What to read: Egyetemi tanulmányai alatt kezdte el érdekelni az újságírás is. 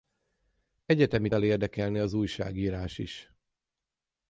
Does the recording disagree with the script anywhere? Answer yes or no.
yes